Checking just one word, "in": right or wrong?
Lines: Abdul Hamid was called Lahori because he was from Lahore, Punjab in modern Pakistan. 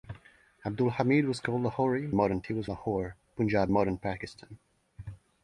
wrong